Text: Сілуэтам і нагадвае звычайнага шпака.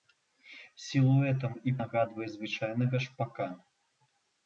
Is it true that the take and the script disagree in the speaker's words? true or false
false